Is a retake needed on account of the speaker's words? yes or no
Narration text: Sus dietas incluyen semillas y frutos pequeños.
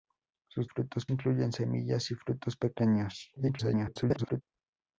yes